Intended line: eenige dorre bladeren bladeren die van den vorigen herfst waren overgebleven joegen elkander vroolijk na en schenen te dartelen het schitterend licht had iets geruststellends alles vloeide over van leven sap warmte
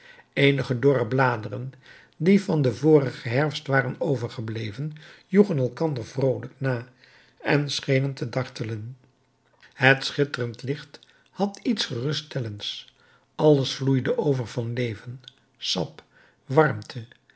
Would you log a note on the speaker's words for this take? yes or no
yes